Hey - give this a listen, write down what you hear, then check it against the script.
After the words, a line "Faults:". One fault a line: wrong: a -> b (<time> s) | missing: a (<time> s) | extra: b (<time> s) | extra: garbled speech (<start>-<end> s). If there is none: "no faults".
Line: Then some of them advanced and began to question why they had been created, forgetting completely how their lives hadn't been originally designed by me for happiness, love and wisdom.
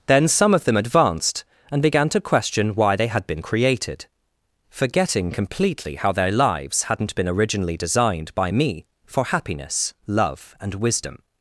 Then some of them advanced and began to question why they had been created, forgetting completely how their lives hadn't been originally designed by me for happiness, love and wisdom.
Faults:
no faults